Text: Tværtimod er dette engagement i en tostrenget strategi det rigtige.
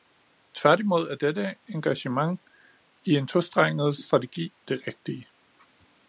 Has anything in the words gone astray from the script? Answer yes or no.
no